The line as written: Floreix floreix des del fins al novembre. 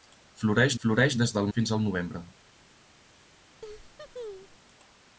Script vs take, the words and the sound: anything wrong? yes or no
yes